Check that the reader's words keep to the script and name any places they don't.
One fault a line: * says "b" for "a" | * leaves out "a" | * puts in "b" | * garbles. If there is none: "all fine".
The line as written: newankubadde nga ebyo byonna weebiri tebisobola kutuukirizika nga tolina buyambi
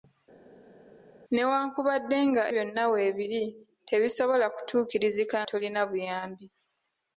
* leaves out "ebyo"
* leaves out "nga"